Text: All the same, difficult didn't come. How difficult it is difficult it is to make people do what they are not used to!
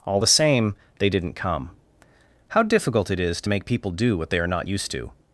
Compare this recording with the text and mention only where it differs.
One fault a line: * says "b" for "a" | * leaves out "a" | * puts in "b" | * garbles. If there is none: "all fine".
* says "they" for "difficult"
* leaves out "difficult it is"